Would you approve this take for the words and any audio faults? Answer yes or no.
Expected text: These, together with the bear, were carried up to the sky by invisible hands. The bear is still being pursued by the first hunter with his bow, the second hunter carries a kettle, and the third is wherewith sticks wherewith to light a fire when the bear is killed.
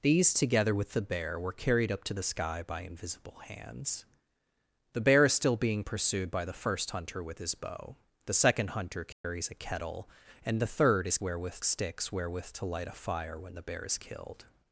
no